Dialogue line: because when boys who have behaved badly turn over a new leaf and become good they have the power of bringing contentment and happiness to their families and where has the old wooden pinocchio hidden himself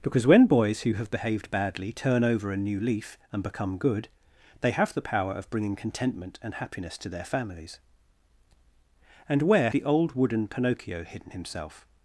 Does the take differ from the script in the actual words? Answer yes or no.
yes